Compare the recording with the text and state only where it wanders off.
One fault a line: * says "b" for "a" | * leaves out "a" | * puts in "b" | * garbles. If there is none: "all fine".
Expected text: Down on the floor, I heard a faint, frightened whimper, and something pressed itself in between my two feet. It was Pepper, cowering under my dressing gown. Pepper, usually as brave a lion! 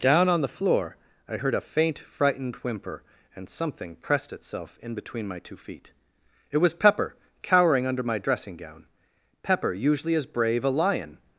all fine